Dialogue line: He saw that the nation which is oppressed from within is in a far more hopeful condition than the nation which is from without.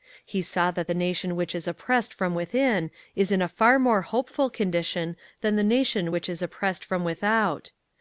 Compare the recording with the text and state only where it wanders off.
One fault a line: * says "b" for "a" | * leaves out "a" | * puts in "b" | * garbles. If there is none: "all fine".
* puts in "oppressed"